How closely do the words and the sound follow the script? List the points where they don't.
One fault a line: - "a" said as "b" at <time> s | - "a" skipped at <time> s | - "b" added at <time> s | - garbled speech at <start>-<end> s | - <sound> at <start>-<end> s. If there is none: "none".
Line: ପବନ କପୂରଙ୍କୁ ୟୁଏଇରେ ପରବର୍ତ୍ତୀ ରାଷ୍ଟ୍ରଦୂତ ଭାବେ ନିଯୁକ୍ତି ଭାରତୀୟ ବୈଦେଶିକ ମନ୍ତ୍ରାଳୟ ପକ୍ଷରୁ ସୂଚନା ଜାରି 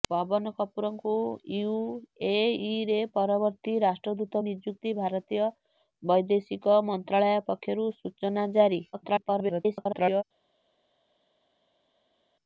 - "ଭାବେ" skipped at 4.4 s
- garbled speech at 8.9-10.2 s